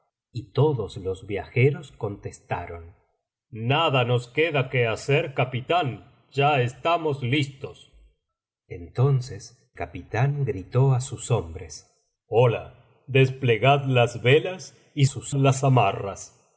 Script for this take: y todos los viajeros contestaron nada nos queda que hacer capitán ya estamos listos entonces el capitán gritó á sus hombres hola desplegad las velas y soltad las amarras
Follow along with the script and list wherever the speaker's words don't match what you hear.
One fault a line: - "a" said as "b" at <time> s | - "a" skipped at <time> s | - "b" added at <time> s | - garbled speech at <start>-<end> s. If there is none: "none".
- "el" skipped at 9.8 s
- "soltad" said as "sus" at 15.0 s